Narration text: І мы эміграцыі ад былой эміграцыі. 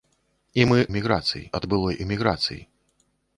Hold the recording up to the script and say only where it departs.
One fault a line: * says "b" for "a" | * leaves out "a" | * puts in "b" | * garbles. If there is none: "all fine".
all fine